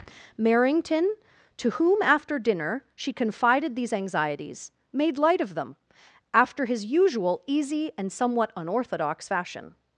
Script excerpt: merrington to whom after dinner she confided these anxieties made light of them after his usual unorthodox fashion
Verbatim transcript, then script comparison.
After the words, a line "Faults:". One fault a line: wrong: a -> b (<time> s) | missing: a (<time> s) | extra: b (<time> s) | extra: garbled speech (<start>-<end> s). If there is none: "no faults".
merrington to whom after dinner she confided these anxieties made light of them after his usual easy and somewhat unorthodox fashion
Faults:
extra: easy and somewhat (7.5 s)